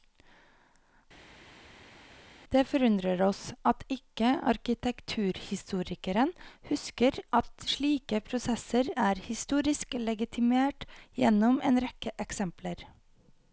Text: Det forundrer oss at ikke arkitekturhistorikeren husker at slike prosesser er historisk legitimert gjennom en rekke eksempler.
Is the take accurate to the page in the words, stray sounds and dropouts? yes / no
yes